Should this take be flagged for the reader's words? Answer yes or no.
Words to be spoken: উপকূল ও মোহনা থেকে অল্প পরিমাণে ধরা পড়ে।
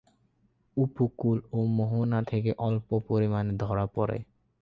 no